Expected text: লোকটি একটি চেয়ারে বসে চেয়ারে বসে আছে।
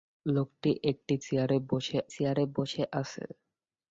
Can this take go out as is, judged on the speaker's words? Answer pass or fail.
pass